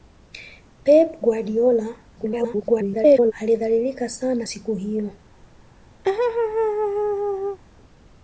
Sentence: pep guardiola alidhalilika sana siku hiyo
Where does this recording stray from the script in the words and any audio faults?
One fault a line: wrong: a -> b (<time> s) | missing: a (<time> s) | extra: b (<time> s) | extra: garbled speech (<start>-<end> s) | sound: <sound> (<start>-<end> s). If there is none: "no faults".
extra: garbled speech (2.2-3.3 s)
sound: laugh (6.0-7.6 s)